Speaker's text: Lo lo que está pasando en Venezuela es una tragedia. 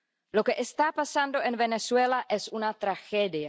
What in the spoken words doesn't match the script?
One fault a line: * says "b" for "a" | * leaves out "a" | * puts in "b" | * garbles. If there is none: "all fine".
* leaves out "lo"